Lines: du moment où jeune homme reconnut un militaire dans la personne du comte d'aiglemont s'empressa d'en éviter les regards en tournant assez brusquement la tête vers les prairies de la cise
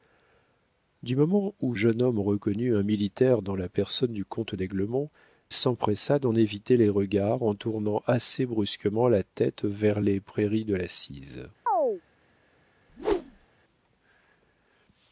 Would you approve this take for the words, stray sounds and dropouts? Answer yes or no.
no